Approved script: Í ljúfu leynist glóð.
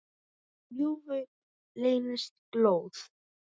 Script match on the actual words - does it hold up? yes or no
yes